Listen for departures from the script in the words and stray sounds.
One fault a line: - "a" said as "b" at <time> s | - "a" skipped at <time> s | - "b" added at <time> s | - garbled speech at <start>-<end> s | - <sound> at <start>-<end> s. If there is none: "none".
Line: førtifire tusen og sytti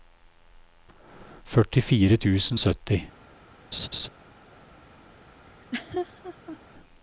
- "og" skipped at 2.6 s
- laugh at 3.7-4.1 s
- laugh at 5.5-6.6 s